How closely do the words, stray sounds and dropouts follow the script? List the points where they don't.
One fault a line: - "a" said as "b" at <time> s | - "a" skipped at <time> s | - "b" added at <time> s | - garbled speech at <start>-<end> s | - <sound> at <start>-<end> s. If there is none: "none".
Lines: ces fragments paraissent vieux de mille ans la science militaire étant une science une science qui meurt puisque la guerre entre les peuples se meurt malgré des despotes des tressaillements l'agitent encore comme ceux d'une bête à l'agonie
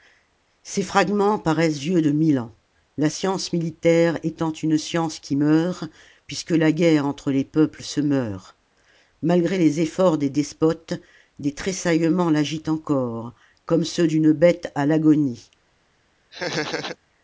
- "une science" skipped at 5.2 s
- "les efforts" added at 9.6 s
- laugh at 16.3-17.0 s